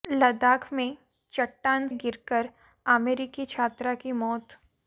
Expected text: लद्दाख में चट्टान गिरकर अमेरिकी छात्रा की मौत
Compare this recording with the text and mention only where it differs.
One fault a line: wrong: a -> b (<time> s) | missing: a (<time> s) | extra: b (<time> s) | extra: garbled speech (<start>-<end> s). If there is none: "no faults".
no faults